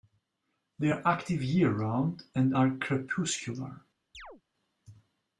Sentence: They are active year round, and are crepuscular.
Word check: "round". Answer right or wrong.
right